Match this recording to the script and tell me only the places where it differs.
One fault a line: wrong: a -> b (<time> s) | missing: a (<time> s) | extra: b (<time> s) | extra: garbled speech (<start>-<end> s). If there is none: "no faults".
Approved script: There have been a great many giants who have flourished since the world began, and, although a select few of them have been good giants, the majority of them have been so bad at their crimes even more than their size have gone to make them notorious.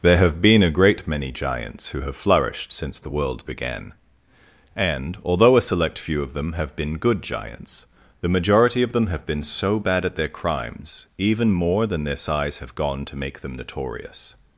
no faults